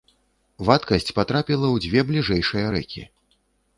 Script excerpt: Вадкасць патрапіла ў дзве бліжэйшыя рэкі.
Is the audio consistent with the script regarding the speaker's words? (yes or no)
yes